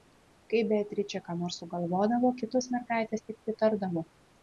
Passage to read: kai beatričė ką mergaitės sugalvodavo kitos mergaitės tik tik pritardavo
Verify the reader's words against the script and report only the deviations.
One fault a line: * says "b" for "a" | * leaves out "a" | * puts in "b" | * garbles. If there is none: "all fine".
* says "nors" for "mergaitės"
* leaves out "tik"